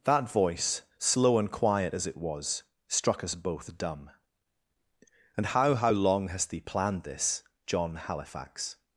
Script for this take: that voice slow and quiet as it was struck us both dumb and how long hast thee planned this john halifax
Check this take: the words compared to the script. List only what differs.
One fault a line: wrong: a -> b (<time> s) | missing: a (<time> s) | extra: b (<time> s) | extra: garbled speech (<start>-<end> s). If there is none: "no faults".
extra: how (5.8 s)